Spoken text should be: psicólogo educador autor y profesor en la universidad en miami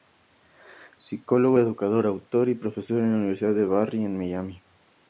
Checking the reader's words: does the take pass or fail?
fail